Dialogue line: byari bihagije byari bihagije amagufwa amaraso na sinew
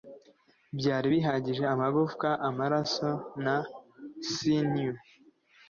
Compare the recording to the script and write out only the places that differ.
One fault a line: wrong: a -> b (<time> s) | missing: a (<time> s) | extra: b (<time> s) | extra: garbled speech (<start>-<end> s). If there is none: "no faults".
missing: byari bihagije (1.6 s)